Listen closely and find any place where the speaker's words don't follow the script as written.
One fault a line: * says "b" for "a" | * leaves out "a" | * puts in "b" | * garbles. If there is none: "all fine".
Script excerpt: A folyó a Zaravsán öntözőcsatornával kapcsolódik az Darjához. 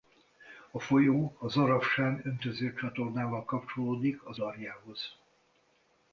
all fine